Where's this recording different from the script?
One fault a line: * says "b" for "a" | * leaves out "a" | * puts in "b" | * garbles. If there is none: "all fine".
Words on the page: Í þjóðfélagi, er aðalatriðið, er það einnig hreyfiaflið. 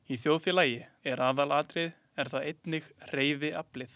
all fine